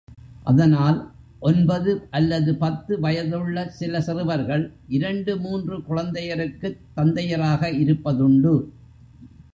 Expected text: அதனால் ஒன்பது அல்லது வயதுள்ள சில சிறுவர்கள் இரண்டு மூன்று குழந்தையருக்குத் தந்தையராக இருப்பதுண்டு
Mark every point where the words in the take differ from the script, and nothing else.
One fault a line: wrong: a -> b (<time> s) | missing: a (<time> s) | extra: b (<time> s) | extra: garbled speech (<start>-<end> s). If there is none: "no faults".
extra: பத்து (2.5 s)